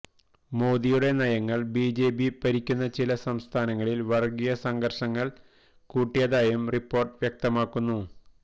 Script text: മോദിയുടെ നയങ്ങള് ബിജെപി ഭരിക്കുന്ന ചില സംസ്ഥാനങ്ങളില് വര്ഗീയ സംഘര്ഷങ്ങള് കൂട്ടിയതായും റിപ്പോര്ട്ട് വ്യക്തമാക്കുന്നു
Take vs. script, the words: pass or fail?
pass